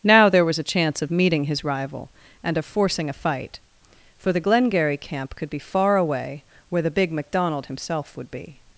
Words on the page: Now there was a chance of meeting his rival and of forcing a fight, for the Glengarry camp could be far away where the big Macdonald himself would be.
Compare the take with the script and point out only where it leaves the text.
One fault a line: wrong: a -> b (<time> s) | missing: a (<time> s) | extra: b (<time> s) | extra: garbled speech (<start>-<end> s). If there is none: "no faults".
no faults